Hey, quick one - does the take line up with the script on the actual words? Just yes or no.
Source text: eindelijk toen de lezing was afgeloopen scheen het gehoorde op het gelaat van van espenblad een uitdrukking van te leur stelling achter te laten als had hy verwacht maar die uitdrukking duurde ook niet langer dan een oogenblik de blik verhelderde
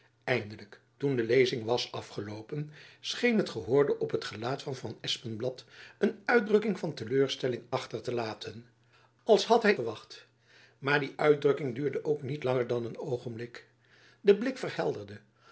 yes